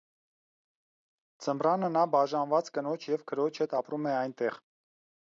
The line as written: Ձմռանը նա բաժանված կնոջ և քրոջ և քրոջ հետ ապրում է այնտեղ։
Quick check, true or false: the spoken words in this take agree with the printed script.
false